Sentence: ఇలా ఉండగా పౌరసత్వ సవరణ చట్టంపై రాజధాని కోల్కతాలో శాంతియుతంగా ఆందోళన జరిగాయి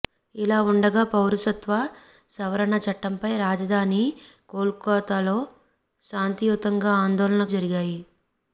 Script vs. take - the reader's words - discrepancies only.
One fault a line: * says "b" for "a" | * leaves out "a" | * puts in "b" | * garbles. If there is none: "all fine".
all fine